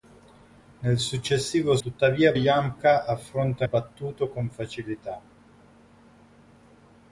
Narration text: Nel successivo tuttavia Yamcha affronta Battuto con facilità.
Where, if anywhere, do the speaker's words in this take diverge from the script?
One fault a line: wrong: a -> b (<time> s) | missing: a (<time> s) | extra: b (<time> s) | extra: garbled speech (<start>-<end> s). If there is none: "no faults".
no faults